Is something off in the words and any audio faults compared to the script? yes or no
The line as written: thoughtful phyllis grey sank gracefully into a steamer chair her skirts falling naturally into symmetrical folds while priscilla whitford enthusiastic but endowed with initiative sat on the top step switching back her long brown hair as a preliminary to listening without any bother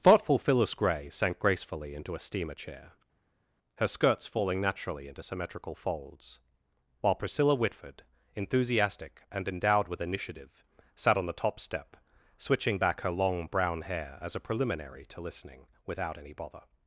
yes